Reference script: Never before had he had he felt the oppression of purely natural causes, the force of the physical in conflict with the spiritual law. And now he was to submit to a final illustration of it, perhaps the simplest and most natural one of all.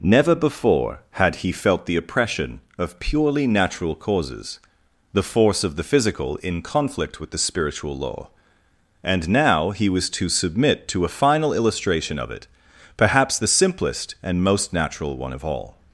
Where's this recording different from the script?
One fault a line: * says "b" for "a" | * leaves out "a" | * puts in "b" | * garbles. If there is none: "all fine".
* leaves out "had he"